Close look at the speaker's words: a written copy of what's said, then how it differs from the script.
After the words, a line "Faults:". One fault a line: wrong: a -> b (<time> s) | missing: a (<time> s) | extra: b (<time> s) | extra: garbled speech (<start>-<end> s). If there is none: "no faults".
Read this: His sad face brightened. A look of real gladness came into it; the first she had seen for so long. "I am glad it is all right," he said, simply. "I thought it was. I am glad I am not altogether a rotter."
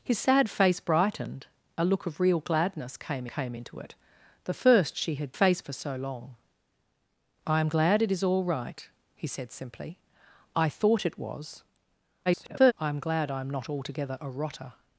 His sad face brightened. A look of real gladness came came into it; the first she had face for so long. "I am glad it is all right," he said, simply. "I thought it was. [garbled] I am glad I am not altogether a rotter."
Faults:
extra: came (3.2 s)
wrong: seen -> face (5.3 s)
extra: garbled speech (12.3-12.7 s)